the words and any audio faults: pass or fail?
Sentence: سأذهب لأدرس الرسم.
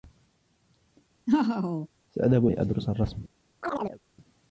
fail